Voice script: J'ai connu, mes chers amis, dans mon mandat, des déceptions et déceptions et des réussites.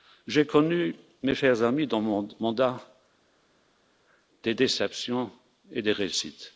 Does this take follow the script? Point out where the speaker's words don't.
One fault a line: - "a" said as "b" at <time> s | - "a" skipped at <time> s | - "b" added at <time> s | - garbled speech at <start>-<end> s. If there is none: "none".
- "déceptions et" skipped at 5.8 s